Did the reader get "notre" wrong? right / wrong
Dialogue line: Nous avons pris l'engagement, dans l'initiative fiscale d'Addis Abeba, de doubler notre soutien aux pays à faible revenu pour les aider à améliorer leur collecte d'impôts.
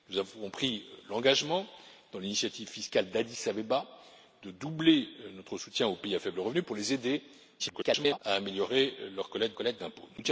right